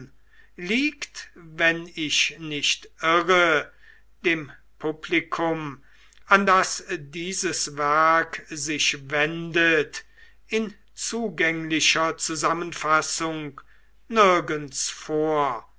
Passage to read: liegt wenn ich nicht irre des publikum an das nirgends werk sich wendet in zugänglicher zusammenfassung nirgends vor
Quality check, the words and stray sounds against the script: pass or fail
fail